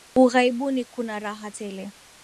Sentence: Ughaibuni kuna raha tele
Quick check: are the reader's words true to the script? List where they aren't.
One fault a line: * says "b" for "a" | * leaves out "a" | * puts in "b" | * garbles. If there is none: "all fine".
all fine